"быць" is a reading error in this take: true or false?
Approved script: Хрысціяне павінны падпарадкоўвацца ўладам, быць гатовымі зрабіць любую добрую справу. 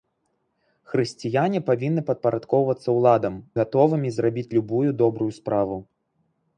true